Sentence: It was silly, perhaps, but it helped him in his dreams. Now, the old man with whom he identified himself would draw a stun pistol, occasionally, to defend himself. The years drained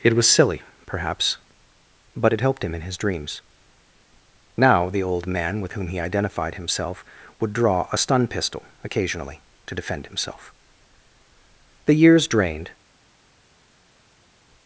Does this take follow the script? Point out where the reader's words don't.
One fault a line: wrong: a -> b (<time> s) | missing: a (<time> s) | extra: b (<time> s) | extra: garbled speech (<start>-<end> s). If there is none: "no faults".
no faults